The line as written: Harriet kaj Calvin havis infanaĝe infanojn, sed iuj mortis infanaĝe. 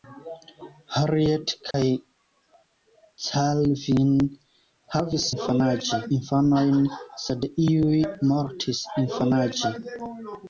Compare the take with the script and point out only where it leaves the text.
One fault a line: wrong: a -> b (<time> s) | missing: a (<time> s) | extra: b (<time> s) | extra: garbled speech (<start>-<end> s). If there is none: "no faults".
no faults